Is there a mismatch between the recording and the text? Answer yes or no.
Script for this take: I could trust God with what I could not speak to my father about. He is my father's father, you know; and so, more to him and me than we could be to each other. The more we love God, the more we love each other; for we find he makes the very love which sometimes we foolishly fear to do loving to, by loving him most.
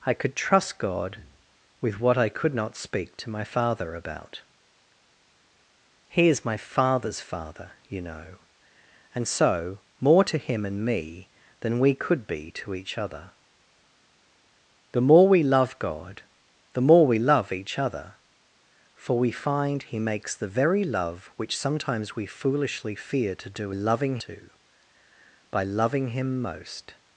no